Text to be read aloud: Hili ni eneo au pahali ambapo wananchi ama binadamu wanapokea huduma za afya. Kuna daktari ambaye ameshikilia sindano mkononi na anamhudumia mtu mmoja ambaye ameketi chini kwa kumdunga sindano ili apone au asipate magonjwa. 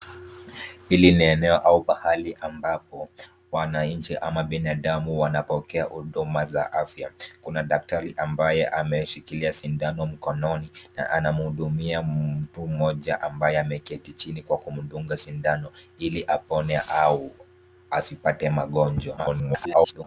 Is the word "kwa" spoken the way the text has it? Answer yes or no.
yes